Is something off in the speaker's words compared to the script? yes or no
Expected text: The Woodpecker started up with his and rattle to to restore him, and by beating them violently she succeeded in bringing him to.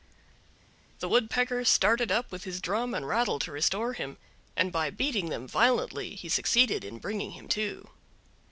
yes